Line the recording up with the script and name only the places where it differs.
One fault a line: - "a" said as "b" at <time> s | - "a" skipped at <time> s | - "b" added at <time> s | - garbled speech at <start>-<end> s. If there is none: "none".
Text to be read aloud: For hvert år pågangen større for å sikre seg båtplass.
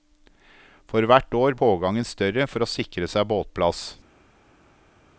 none